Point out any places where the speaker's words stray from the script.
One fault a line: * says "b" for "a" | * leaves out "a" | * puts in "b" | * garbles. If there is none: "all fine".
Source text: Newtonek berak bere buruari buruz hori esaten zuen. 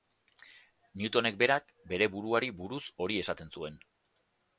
all fine